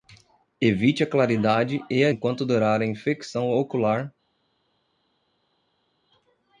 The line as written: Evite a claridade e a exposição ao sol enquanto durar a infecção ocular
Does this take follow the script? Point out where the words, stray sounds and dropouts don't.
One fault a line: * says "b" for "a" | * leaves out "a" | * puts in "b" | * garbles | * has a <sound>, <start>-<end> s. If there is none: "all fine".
* leaves out "exposição ao sol"